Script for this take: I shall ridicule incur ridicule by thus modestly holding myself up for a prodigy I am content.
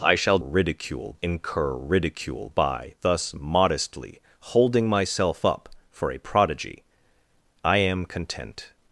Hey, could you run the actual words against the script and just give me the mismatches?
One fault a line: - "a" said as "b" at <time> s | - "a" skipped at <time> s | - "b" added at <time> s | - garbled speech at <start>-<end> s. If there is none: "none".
none